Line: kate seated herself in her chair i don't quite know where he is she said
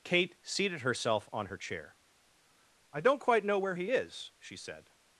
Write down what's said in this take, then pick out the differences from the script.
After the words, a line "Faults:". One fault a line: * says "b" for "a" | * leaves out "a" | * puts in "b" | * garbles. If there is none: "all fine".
kate seated herself on her chair i don't quite know where he is she said
Faults:
* says "on" for "in"